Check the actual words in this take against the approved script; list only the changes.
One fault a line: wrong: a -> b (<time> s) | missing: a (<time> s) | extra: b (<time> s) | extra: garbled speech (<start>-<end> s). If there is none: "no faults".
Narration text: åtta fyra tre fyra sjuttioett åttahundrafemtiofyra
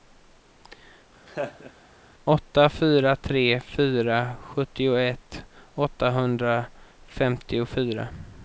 no faults